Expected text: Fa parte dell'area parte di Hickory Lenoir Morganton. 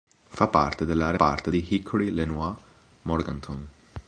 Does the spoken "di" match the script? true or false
true